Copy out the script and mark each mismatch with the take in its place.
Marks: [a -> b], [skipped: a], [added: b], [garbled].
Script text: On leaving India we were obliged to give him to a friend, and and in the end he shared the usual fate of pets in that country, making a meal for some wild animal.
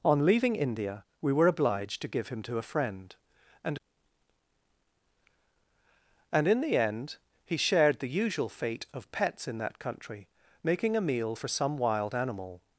On leaving India we were obliged to give him to a friend, and and in the end he shared the usual fate of pets in that country, making a meal for some wild animal.